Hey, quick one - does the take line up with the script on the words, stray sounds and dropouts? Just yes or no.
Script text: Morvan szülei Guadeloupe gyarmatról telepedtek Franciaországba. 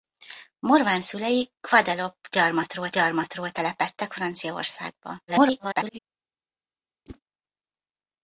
no